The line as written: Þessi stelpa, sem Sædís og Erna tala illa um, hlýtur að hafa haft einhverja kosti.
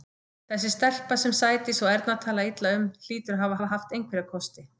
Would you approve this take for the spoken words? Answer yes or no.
no